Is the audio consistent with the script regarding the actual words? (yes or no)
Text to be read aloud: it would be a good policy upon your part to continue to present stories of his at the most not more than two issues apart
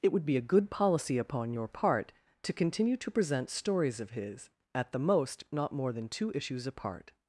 yes